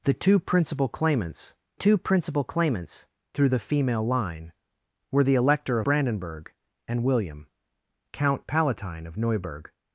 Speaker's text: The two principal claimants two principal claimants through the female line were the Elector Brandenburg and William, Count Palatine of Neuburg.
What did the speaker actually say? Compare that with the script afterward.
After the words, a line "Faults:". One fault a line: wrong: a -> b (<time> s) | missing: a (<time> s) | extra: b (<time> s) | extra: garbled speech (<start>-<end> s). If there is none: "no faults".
The two principal claimants two principal claimants through the female line were the Elector Brandenburg and William, Count Palatine of Neuburg.
Faults:
no faults